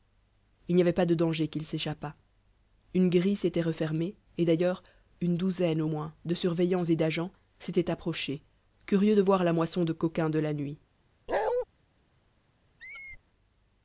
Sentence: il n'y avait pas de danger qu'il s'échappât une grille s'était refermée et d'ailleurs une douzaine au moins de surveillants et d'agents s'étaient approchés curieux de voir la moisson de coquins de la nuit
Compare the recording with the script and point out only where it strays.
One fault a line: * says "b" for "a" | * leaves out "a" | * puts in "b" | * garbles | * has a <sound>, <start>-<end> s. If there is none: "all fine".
* has a bark, 11.3-11.7 s
* has a squeak, 12.8-13.2 s